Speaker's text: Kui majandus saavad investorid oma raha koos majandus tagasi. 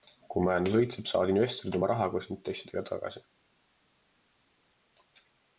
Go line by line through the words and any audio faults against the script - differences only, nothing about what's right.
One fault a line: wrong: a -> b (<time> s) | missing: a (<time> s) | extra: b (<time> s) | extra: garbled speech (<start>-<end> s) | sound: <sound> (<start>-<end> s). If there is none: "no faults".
extra: õitseb (0.8 s)
wrong: majandus -> intressidega (2.4 s)